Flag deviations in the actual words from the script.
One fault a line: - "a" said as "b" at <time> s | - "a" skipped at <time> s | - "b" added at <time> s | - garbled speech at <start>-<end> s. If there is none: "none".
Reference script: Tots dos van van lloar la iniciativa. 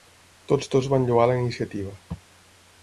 - "van" skipped at 1.1 s